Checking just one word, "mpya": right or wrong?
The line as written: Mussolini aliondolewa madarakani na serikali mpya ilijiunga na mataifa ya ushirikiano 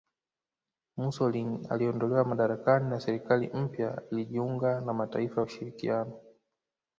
right